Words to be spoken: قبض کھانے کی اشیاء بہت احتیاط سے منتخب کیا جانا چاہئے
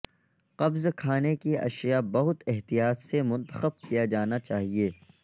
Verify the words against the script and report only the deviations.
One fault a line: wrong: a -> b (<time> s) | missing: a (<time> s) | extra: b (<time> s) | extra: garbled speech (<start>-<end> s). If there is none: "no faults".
no faults